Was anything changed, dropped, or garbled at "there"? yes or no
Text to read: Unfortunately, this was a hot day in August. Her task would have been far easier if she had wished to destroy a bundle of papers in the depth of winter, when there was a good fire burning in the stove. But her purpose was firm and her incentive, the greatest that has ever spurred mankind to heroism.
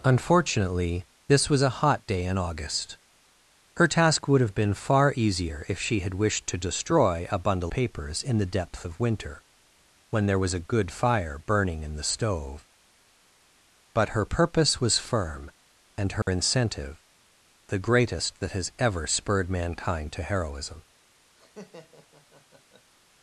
no